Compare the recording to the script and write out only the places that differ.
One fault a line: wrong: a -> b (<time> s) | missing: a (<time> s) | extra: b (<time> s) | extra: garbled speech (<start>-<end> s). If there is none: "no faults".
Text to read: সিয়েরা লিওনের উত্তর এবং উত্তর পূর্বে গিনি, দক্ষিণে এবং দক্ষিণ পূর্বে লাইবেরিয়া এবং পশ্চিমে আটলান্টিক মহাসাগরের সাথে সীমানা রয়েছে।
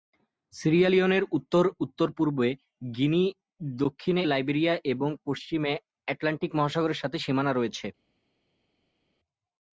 missing: এবং (1.6 s)
missing: এবং দক্ষিণ পূর্বে (4.2 s)